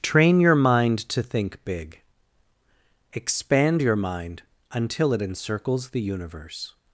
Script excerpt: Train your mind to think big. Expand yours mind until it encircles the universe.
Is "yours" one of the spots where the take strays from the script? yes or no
yes